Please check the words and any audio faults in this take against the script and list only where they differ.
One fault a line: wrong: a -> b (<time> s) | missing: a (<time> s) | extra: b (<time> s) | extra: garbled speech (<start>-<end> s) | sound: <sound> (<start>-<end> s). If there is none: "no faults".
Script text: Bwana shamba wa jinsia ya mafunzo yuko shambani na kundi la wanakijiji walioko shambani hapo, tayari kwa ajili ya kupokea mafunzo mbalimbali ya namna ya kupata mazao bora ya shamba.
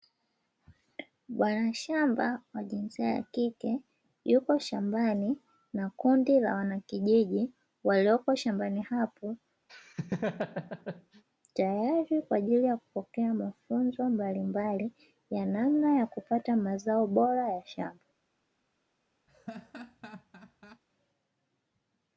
wrong: mafunzo -> kike (3.2 s)
sound: laugh (9.7-11.2 s)
sound: laugh (19.3-20.8 s)